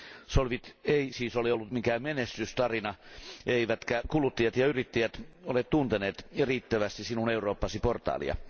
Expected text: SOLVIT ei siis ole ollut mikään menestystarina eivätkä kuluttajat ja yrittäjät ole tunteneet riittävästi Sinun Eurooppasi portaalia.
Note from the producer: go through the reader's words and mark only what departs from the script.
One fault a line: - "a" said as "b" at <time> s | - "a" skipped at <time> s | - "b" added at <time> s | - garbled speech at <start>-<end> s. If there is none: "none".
none